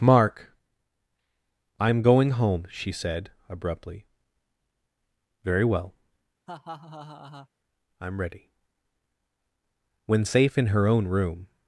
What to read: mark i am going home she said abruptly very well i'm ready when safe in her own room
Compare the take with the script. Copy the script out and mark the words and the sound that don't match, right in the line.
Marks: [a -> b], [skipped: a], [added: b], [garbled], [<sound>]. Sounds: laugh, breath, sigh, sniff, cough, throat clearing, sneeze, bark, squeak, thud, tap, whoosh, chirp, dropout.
mark i am going home she said abruptly very well [laugh] i'm ready when safe in her own room